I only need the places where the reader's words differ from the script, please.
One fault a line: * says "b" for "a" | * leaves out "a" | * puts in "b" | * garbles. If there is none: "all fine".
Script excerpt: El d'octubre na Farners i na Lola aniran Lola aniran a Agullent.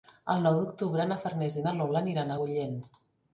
* puts in "nou"
* leaves out "Lola aniran"